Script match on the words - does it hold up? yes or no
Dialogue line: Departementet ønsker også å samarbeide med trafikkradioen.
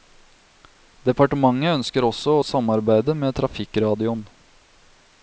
yes